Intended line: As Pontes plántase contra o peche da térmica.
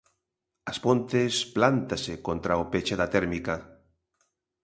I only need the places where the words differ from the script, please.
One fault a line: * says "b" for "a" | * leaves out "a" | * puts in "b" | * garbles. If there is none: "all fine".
all fine